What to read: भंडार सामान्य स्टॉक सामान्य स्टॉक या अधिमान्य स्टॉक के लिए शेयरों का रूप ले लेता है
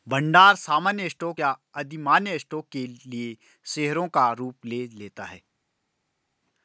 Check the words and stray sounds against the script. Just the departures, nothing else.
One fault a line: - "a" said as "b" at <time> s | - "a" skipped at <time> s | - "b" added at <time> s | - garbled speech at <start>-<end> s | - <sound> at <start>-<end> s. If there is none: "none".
- "सामान्य स्टॉक" skipped at 1.4 s